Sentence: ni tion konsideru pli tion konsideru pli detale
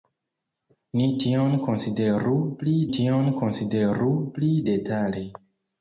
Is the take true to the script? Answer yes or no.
yes